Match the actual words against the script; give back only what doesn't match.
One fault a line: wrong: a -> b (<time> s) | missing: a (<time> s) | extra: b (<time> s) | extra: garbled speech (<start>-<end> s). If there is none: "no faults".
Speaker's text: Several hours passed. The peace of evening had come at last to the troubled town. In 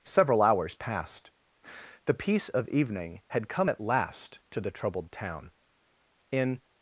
no faults